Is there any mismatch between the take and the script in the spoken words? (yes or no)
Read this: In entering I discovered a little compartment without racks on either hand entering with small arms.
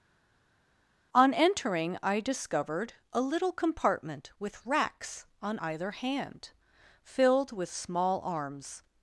yes